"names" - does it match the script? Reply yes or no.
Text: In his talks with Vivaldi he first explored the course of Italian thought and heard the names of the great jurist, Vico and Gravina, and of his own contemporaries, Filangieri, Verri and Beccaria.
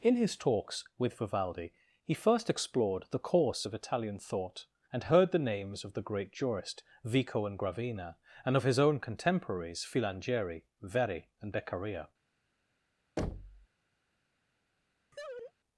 yes